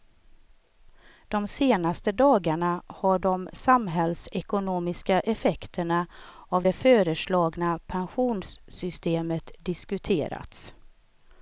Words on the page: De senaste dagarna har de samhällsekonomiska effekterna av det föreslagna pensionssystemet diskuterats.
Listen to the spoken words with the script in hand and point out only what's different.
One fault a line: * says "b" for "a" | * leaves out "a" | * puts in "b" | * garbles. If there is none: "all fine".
all fine